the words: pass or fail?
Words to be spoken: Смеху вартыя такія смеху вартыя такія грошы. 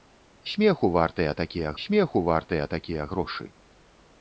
pass